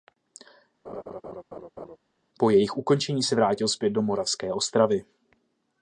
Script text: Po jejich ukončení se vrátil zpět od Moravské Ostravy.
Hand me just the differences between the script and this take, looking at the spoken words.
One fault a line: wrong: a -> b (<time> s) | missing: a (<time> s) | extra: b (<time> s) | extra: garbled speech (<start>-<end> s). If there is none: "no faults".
wrong: od -> do (3.9 s)